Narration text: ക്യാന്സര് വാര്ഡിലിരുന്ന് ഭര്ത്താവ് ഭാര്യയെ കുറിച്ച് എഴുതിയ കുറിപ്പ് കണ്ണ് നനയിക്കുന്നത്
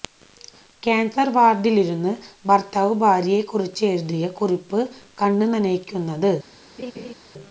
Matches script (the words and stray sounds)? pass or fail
fail